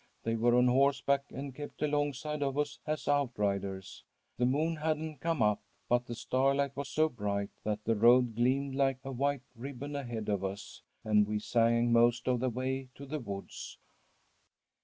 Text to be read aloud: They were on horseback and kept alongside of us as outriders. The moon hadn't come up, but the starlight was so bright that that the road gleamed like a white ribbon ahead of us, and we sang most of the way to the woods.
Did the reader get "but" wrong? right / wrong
right